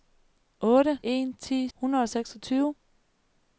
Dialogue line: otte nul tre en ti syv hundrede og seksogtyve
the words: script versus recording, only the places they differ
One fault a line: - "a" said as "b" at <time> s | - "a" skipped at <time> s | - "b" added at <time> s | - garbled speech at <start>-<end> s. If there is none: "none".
- "nul tre" skipped at 1.0 s
- "syv" skipped at 1.7 s